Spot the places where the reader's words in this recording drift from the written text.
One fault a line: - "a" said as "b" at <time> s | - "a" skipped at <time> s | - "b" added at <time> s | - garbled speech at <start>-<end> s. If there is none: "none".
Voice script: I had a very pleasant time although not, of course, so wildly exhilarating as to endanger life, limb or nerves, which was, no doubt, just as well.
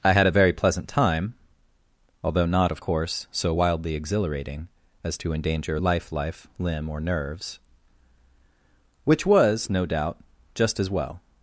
- "life" added at 6.1 s